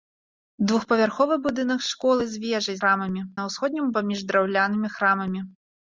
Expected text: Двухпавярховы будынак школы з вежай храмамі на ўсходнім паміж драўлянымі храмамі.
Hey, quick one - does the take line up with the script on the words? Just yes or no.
yes